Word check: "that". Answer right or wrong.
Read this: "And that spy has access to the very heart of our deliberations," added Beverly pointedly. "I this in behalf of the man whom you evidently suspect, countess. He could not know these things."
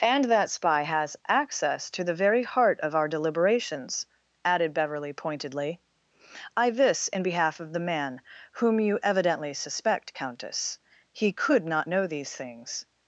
right